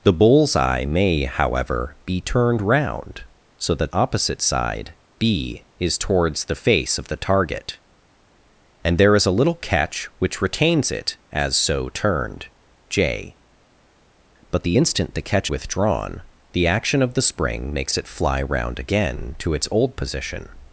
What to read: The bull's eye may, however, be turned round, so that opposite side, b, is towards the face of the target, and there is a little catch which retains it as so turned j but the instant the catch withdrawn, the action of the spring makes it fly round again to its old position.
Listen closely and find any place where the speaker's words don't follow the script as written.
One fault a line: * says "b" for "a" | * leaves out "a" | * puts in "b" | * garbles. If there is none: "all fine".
all fine